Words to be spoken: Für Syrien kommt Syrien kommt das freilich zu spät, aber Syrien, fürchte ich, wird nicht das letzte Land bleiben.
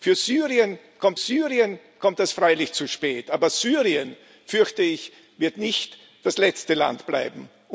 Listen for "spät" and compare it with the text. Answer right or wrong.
right